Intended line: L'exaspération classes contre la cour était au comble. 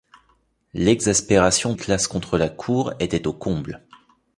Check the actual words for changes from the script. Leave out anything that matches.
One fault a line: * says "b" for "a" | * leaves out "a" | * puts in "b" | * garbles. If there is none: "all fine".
all fine